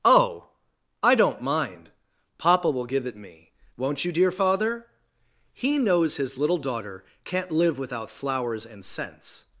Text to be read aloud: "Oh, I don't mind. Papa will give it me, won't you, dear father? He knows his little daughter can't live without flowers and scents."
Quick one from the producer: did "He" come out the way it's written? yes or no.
yes